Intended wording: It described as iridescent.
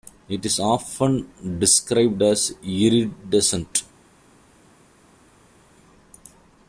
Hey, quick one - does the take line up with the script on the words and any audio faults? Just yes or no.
no